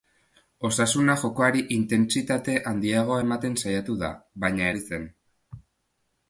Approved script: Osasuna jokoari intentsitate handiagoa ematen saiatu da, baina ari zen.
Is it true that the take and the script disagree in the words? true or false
false